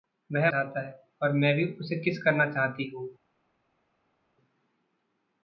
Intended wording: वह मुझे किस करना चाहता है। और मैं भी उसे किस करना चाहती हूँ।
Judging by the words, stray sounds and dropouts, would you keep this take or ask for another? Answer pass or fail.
fail